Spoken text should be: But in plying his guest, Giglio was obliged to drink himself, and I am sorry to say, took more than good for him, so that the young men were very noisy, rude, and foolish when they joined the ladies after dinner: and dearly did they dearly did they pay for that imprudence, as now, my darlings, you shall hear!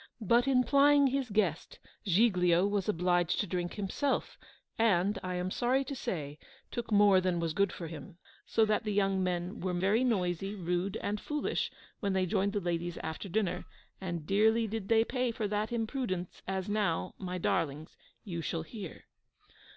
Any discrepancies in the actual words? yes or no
yes